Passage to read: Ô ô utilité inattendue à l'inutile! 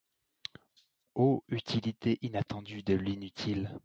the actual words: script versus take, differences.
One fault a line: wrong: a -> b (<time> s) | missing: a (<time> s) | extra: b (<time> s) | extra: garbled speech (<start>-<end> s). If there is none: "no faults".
missing: ô (1.4 s)
wrong: à -> de (2.8 s)